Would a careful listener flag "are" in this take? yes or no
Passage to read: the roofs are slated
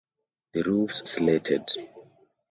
yes